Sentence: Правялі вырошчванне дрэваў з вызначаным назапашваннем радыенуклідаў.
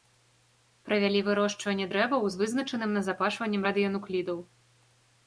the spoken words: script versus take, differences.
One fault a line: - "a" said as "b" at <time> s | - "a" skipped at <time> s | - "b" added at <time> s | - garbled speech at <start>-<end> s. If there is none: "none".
none